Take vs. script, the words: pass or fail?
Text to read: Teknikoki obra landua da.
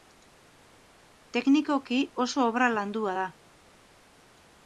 fail